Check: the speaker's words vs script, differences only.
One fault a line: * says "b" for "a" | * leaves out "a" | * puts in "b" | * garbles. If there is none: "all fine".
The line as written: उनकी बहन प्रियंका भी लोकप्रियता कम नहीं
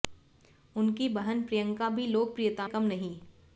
all fine